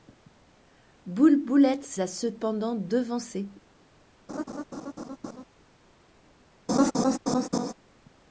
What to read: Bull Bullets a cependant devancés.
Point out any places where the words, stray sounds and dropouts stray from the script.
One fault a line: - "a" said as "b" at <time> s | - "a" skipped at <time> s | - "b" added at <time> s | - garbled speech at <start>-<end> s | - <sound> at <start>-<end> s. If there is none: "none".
- laugh at 4.3-5.4 s
- laugh at 6.7-7.7 s